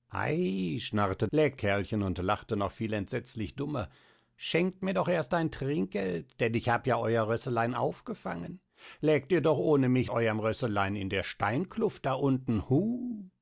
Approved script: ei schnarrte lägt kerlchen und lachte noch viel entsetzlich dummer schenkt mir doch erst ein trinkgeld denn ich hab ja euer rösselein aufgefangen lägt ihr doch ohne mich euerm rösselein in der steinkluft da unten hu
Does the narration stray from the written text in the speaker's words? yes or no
no